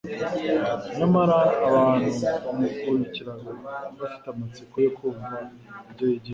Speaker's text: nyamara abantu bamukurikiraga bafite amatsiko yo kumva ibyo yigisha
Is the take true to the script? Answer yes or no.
yes